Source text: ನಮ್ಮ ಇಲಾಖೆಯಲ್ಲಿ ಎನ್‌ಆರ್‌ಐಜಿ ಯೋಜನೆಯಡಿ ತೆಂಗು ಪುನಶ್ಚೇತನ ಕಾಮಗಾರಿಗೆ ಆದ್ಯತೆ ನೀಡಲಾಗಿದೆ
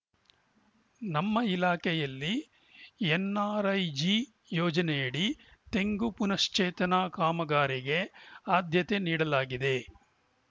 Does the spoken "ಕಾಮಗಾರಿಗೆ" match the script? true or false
true